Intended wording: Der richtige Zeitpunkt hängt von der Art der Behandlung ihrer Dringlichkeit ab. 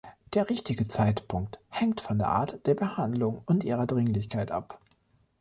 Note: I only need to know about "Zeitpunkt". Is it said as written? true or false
true